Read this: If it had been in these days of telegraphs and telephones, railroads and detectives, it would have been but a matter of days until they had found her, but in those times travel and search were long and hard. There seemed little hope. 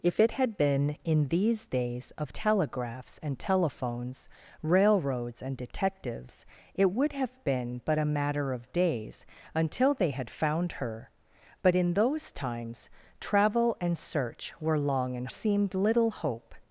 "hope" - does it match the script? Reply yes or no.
yes